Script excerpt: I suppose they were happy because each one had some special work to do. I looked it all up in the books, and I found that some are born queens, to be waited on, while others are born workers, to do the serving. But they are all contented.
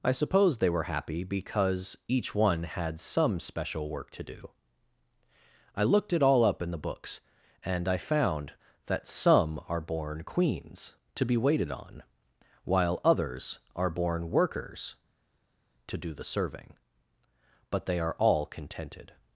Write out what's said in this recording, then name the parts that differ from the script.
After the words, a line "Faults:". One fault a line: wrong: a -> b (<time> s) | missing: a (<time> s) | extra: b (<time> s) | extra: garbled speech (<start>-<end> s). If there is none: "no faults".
I suppose they were happy because each one had some special work to do. I looked it all up in the books, and I found that some are born queens, to be waited on, while others are born workers, to do the serving. But they are all contented.
Faults:
no faults